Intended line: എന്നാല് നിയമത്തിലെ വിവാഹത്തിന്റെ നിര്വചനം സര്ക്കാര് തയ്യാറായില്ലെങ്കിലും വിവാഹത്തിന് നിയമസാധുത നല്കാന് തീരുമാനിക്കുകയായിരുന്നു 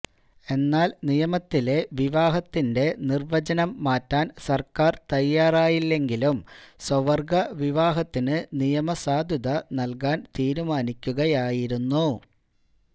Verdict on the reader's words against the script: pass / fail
fail